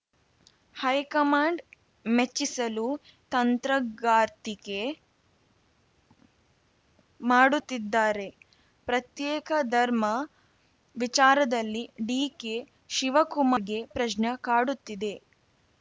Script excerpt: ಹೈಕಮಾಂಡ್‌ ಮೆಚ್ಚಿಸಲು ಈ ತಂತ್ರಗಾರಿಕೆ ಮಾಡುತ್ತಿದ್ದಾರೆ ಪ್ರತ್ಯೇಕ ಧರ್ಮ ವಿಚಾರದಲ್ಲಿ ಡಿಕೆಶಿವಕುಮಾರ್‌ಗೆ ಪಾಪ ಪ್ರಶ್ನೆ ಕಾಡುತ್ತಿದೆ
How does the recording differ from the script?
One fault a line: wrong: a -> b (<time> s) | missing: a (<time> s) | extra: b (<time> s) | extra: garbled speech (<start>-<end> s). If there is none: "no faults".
missing: ಈ (2.9 s)
missing: ಪಾಪ (13.8 s)